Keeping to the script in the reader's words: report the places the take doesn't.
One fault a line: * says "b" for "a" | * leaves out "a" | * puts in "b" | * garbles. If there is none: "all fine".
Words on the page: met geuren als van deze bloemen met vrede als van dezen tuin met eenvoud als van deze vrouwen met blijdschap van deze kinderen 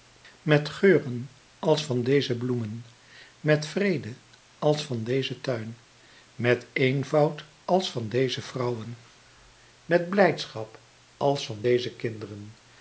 * puts in "als"